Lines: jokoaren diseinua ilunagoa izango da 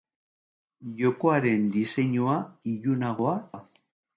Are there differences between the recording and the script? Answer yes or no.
yes